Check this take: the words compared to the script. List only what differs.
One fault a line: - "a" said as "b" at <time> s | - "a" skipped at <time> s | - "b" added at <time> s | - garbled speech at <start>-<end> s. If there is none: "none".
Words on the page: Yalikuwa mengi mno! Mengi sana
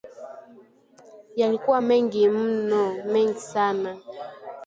none